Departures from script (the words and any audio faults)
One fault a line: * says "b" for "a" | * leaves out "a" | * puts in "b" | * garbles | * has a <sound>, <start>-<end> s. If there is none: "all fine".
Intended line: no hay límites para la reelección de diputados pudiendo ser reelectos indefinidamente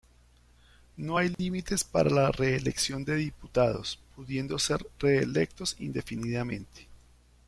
* has a dropout, 1.3-1.4 s